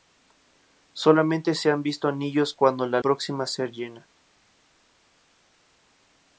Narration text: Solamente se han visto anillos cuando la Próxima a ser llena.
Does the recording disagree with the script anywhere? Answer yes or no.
no